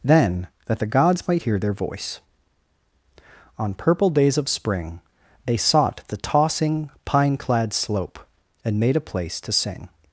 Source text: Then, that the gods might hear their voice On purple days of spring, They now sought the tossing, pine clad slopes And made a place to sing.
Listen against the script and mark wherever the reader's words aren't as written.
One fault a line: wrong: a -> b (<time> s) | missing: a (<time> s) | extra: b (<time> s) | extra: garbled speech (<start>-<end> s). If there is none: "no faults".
missing: now (5.6 s)
wrong: slopes -> slope (7.7 s)